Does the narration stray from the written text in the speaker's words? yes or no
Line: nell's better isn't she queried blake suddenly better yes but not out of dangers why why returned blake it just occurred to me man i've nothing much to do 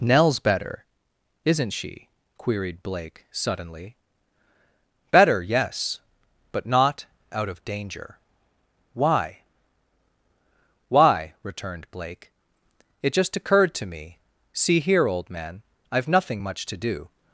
yes